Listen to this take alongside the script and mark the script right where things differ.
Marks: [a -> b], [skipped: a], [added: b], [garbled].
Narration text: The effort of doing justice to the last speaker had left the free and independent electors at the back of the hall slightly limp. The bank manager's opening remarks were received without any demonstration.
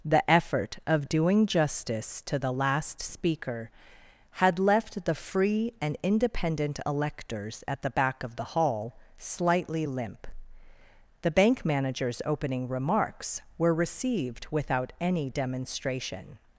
The effort of doing justice to the last speaker had left the free and independent electors at the back of the hall slightly limp. The bank manager's opening remarks were received without any demonstration.